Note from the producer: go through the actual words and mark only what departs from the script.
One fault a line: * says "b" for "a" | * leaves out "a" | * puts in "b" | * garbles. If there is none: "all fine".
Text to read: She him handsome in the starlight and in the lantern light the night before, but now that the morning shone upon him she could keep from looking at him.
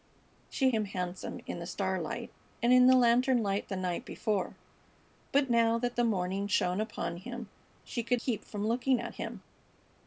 all fine